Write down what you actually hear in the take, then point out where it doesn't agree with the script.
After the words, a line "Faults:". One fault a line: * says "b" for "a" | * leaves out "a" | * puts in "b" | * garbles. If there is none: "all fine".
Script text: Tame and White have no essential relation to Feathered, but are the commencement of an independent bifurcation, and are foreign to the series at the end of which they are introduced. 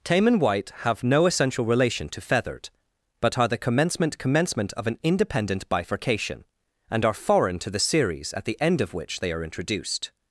Tame and White have no essential relation to Feathered, but are the commencement commencement of an independent bifurcation, and are foreign to the series at the end of which they are introduced.
Faults:
* puts in "commencement"